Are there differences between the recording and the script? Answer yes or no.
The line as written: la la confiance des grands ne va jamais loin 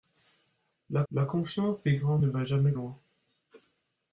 no